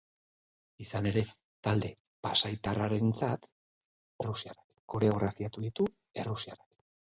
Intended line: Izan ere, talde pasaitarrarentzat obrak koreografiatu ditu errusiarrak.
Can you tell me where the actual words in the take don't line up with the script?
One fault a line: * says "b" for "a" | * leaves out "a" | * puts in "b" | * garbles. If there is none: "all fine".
* says "errusiarrak" for "obrak"